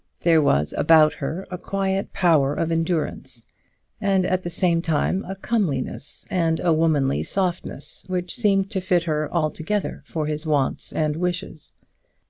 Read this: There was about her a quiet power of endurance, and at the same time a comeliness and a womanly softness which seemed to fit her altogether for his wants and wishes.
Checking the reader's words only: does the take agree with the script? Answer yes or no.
yes